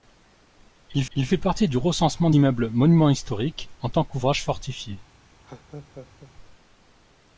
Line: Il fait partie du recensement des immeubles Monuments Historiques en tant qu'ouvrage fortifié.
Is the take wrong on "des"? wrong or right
wrong